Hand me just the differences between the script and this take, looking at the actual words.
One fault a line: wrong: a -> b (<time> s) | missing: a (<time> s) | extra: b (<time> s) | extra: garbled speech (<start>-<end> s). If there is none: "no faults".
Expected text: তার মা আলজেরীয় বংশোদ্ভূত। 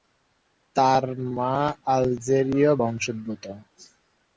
no faults